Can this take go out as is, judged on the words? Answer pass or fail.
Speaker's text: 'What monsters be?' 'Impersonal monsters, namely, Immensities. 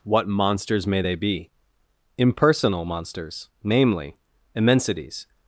fail